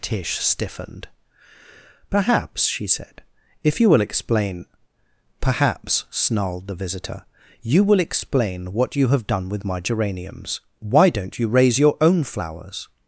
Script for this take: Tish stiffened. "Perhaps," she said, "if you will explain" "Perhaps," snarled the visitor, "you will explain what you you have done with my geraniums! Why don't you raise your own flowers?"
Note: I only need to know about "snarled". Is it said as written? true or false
true